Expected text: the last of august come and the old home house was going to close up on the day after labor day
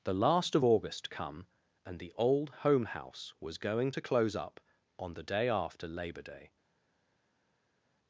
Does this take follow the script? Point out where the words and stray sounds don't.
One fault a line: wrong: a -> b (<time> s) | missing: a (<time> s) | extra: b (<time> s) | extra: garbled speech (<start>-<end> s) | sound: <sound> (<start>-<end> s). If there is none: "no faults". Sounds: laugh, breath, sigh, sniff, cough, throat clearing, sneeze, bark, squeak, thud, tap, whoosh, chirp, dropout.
no faults